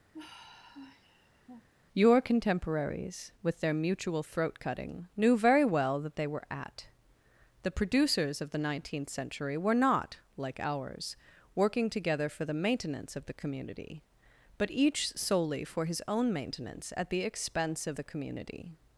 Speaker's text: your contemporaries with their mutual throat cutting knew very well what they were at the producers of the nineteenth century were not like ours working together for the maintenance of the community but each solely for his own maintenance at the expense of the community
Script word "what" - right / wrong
wrong